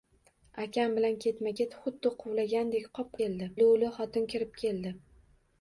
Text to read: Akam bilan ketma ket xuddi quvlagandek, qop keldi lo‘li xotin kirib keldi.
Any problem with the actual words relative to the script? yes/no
no